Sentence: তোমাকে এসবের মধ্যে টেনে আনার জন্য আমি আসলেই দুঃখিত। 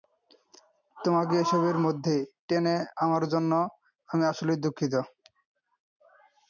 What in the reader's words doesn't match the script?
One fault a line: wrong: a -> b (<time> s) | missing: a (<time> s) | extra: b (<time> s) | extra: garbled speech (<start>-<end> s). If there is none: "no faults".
no faults